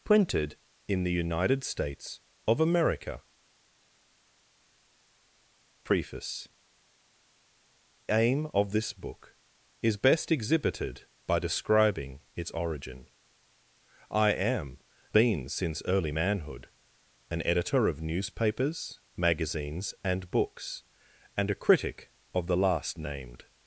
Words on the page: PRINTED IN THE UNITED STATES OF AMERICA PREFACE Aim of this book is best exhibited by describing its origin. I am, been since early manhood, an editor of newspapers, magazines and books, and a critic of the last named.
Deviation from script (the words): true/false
false